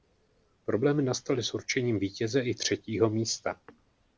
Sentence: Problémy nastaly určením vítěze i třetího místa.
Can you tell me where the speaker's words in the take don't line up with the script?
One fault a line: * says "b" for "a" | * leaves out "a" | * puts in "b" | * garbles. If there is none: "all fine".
* puts in "s"